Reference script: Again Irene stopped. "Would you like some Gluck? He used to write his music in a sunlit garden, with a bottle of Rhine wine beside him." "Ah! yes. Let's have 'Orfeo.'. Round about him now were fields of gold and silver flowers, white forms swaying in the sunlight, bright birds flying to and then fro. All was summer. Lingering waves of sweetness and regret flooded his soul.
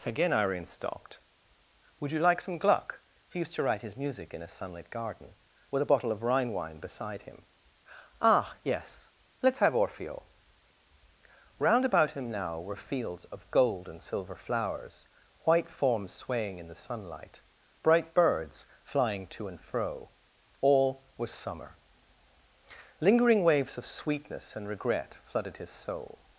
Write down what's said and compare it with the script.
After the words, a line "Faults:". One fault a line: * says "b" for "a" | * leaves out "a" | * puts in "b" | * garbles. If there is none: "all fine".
Again Irene stopped. "Would you like some Gluck? He used to write his music in a sunlit garden, with a bottle of Rhine wine beside him." "Ah! yes. Let's have 'Orfeo.'. Round about him now were fields of gold and silver flowers, white forms swaying in the sunlight, bright birds flying to and fro. All was summer. Lingering waves of sweetness and regret flooded his soul.
Faults:
* leaves out "then"